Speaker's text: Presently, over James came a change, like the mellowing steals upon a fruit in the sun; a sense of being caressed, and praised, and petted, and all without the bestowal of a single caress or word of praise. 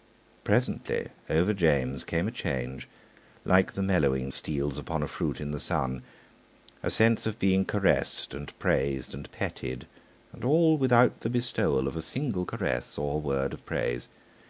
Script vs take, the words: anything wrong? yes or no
no